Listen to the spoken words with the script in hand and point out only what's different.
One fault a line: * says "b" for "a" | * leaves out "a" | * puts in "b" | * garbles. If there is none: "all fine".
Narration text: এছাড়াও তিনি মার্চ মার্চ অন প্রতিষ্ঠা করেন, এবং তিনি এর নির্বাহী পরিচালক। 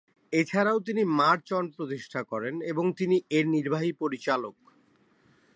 * leaves out "মার্চ"